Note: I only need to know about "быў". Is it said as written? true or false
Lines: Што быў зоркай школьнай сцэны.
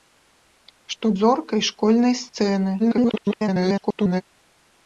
false